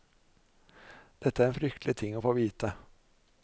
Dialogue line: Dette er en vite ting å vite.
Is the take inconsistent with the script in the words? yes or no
yes